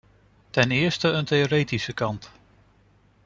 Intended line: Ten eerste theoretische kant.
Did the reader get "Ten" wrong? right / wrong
right